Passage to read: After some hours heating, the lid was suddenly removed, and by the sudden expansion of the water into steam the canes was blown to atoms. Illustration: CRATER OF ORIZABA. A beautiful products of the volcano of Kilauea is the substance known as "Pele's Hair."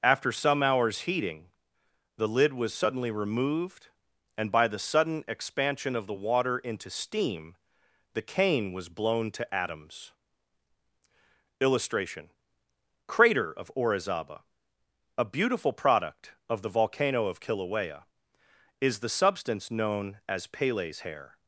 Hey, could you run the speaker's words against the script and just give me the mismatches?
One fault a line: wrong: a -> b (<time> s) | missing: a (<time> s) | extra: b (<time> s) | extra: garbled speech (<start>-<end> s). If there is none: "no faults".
wrong: canes -> cane (8.2 s)
wrong: products -> product (15.7 s)